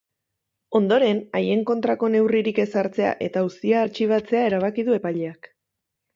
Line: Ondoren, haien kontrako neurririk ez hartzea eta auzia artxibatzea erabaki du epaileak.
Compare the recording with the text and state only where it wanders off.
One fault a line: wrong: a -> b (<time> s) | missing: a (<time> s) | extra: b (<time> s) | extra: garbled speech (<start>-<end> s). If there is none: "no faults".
no faults